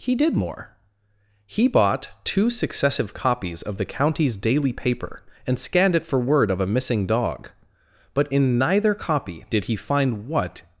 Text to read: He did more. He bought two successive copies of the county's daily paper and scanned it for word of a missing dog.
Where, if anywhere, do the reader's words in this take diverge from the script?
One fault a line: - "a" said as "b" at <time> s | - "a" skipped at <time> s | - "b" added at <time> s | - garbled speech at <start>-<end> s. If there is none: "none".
- "But in neither copy did he find what" added at 8.2 s